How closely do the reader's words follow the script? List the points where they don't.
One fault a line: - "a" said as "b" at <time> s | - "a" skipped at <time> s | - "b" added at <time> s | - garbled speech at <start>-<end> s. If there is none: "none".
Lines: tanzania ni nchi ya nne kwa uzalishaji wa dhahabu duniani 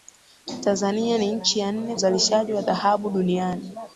- "kwa" skipped at 1.9 s